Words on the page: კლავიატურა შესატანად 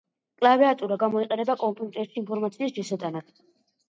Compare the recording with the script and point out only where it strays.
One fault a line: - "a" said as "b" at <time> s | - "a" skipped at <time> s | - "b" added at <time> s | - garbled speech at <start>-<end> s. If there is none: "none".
- "გამოიყენება კომპიუტერში ინფორმაციის" added at 1.0 s